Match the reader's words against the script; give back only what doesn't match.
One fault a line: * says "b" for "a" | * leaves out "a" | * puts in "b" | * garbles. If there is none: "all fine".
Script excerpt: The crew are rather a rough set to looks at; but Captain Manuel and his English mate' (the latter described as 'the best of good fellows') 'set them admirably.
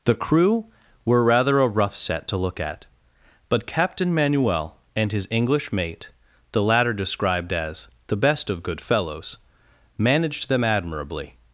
* says "were" for "are"
* says "look" for "looks"
* says "managed" for "set"